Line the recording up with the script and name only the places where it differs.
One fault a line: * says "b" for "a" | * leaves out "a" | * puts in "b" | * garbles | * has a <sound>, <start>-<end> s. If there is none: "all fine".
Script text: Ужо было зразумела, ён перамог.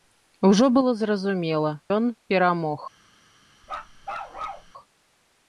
* has a bark, 3.6-4.7 s